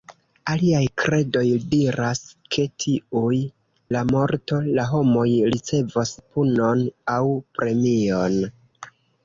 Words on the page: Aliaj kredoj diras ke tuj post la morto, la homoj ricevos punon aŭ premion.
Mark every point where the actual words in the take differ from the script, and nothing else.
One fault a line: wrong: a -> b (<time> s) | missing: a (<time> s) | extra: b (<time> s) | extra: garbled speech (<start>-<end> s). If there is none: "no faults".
missing: post (3.4 s)